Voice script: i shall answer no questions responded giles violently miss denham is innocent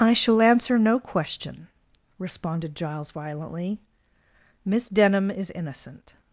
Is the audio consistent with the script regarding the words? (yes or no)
no